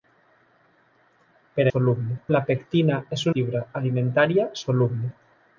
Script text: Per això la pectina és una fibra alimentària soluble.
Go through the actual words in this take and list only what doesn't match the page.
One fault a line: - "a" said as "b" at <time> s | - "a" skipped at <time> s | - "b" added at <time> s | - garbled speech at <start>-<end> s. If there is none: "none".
- "això" said as "soluble" at 1.7 s
- "una" skipped at 3.3 s